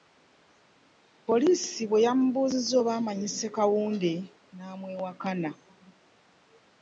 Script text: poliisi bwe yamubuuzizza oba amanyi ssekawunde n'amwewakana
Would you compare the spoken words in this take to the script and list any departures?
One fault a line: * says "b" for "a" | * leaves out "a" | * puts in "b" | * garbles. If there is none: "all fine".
all fine